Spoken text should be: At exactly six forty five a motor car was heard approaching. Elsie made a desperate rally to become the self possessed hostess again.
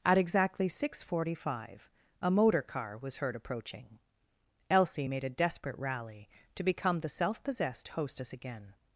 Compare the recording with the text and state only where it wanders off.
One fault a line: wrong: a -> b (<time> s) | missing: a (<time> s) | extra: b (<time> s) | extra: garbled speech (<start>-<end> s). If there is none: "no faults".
no faults